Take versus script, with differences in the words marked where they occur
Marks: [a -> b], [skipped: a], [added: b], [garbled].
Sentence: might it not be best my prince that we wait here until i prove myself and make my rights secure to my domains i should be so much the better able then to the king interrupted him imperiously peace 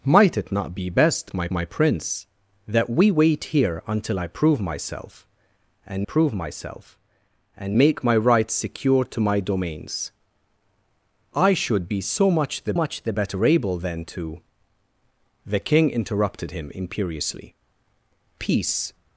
might it not be best my [added: my] prince that we wait here until i prove myself and [added: prove myself and] make my rights secure to my domains i should be so much the [added: much the] better able then to the king interrupted him imperiously peace